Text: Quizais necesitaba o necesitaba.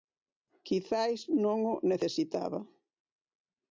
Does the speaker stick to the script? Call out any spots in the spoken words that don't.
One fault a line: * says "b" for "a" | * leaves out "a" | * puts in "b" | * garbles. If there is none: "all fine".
* says "non" for "necesitaba"